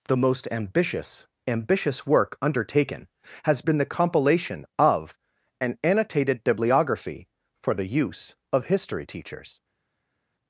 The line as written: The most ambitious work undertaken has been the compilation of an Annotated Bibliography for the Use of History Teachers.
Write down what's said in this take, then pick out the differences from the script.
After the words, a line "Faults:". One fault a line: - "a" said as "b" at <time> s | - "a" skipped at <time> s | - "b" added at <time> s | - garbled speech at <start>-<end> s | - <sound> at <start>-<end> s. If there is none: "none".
The most ambitious ambitious work undertaken has been the compilation of an Annotated Bibliography for the Use of History Teachers.
Faults:
- "ambitious" added at 1.5 s